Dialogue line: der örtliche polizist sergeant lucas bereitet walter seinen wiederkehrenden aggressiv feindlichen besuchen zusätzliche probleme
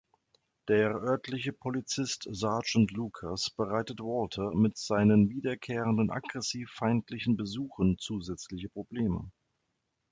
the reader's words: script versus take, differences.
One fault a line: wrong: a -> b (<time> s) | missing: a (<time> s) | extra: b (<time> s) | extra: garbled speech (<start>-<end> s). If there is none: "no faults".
extra: mit (4.5 s)